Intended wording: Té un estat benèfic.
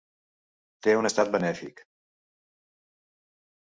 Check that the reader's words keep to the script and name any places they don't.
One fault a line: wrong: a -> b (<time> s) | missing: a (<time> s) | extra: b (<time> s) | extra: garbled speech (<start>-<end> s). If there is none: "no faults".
no faults